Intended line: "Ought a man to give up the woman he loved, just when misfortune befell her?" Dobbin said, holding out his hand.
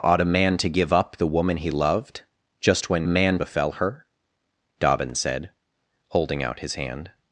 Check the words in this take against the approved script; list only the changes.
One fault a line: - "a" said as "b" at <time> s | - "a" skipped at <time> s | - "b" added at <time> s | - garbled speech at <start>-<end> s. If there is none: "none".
- "misfortune" said as "man" at 3.1 s